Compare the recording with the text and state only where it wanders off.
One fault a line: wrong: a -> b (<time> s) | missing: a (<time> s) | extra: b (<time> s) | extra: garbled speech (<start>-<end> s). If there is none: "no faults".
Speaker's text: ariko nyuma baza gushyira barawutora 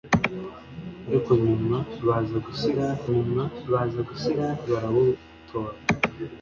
extra: nyuma baza gushyira (3.1 s)